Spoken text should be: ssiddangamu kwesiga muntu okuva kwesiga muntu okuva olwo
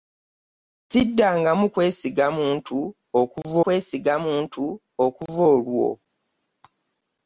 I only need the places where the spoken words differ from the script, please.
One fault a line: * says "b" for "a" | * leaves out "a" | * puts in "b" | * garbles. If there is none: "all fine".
all fine